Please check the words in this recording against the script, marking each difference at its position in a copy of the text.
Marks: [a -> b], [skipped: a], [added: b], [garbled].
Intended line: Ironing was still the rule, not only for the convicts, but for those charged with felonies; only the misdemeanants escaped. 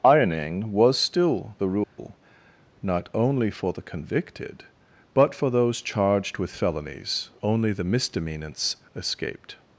Ironing was still the rule, not only for the [convicts, -> convicted] but for those charged with felonies; only the misdemeanants escaped.